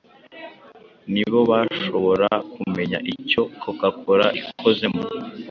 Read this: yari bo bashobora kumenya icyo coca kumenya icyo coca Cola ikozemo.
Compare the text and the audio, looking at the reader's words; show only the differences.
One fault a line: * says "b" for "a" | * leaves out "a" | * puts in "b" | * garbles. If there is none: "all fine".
* says "ni" for "yari"
* leaves out "kumenya icyo coca"